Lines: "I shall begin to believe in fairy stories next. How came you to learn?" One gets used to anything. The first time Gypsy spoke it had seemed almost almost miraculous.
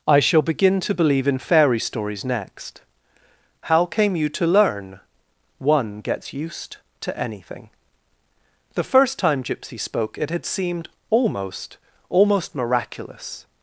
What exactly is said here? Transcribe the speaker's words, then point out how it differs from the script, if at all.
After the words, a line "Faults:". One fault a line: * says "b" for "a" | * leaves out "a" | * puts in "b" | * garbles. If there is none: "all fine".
"I shall begin to believe in fairy stories next. How came you to learn?" One gets used to anything. The first time Gypsy spoke it had seemed almost almost miraculous.
Faults:
all fine